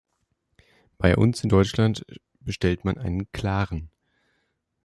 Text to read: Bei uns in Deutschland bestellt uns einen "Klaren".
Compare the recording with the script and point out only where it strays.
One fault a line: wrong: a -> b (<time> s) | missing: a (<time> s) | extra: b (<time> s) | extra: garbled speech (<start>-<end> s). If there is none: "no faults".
wrong: uns -> man (2.9 s)